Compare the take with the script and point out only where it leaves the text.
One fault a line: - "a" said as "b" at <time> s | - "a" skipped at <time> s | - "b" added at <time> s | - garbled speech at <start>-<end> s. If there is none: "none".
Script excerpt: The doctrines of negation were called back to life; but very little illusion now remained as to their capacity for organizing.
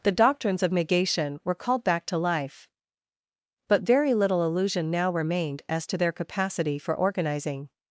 none